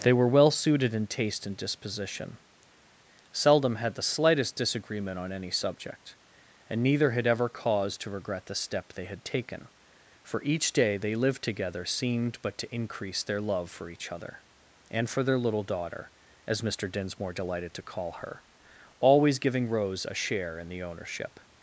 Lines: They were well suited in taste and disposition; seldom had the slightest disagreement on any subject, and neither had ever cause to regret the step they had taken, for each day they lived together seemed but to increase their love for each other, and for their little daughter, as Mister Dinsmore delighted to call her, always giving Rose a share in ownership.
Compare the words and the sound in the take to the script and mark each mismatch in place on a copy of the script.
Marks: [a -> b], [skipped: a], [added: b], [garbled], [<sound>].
They were well suited in taste and disposition; seldom had the slightest disagreement on any subject, and neither had ever cause to regret the step they had taken, for each day they lived together seemed but to increase their love for each other, and for their little daughter, as Mister Dinsmore delighted to call her, always giving Rose a share in [added: the] ownership.